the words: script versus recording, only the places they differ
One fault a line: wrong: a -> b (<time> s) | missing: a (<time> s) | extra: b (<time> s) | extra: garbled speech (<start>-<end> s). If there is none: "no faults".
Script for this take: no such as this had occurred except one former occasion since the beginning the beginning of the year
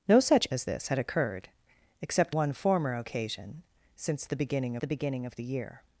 no faults